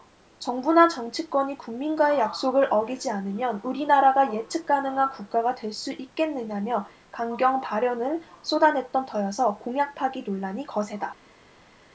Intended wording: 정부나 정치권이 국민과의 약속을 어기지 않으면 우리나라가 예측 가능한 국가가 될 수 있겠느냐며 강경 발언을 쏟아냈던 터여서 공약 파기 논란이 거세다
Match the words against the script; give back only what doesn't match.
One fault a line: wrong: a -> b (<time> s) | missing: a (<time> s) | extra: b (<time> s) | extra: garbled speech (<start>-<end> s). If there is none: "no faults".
no faults